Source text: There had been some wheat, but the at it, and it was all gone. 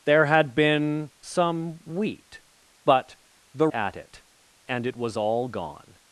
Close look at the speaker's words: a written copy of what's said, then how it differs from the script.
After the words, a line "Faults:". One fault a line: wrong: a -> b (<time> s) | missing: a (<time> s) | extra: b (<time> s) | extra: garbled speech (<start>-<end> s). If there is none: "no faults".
There had been some wheat, but the at it, and it was all gone.
Faults:
no faults